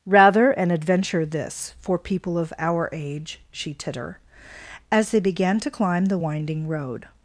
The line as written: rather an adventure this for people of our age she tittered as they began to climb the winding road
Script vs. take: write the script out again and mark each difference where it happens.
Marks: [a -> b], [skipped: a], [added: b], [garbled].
rather an adventure this for people of our age she [tittered -> titter] as they began to climb the winding road